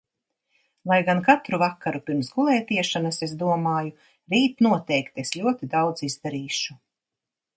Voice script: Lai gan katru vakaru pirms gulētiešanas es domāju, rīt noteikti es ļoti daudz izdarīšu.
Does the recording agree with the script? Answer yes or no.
yes